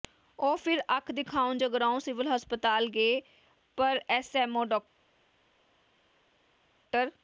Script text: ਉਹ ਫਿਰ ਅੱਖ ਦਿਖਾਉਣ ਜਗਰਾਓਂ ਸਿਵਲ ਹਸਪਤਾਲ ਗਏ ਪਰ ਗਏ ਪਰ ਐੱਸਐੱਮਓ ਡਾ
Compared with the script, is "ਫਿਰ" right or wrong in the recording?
right